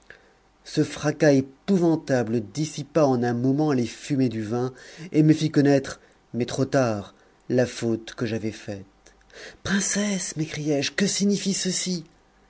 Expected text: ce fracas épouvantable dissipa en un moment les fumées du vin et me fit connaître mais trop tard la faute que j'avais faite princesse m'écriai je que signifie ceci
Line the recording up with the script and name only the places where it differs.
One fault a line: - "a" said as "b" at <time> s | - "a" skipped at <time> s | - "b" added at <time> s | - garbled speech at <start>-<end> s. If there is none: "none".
none